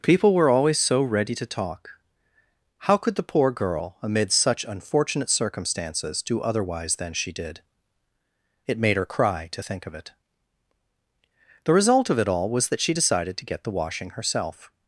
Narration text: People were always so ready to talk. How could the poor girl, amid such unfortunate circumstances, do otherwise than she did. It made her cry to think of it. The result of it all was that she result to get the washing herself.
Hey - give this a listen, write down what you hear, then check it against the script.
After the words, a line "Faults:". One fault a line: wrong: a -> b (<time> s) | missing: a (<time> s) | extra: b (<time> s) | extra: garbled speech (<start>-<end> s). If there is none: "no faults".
People were always so ready to talk. How could the poor girl, amid such unfortunate circumstances, do otherwise than she did. It made her cry to think of it. The result of it all was that she decided to get the washing herself.
Faults:
wrong: result -> decided (12.9 s)